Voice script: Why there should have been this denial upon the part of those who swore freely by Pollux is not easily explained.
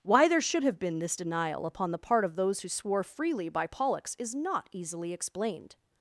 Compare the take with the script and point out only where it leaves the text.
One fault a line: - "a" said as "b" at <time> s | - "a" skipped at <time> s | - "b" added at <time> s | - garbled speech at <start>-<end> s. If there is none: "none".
none